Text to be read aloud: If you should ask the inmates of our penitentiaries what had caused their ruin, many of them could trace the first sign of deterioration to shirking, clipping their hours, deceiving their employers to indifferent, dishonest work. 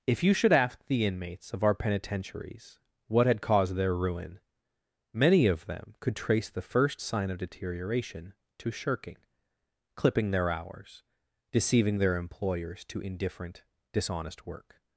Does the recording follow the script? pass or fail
pass